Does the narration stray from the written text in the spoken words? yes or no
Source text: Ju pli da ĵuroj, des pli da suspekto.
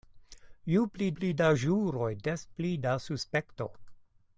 yes